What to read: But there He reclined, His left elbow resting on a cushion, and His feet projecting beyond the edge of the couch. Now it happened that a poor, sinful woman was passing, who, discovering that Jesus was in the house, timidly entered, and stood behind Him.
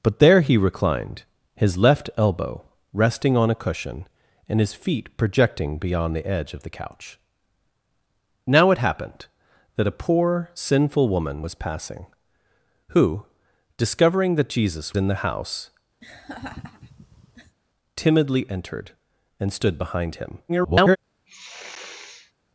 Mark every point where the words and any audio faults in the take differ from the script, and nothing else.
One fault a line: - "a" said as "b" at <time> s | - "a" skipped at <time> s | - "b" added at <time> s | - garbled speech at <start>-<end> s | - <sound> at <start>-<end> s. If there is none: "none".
- "was" skipped at 14.9 s
- laugh at 16.0-17.6 s
- garbled speech at 20.5-21.0 s
- sniff at 21.3-22.3 s